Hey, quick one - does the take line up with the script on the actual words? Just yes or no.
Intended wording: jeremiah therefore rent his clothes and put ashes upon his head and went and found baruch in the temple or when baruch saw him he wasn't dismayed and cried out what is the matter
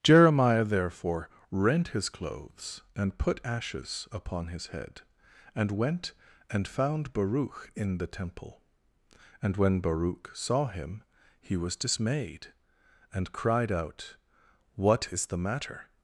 no